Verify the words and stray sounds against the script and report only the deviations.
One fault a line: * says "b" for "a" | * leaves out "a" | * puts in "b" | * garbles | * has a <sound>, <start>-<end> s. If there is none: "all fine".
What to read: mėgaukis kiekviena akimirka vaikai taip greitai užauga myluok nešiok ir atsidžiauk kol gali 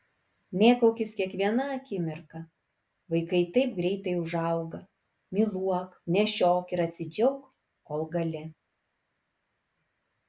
all fine